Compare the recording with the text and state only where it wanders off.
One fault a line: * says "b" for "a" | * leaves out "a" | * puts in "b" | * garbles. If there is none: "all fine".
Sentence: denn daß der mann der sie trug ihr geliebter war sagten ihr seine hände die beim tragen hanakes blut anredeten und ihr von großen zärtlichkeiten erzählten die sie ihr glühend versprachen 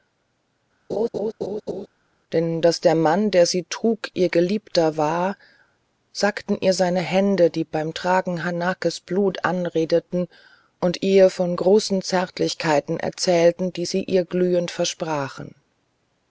all fine